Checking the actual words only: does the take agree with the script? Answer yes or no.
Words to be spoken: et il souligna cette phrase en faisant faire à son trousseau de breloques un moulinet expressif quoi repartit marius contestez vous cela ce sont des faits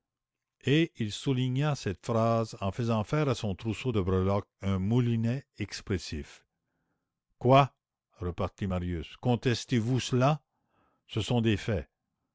yes